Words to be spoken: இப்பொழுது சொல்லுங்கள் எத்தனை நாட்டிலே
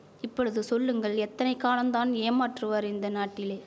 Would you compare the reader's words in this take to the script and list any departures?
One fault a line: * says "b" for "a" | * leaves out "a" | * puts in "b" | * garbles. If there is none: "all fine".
* puts in "காலந்தான் ஏமாற்றுவார் இந்த"